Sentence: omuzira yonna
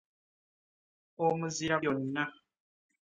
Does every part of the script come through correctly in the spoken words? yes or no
yes